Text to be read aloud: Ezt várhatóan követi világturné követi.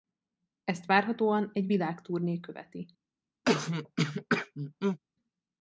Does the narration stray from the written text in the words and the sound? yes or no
yes